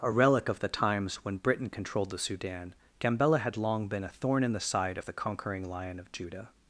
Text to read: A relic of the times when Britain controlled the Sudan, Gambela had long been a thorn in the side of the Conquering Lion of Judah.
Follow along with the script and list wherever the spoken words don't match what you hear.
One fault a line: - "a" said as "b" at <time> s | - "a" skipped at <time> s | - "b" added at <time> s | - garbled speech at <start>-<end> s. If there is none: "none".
none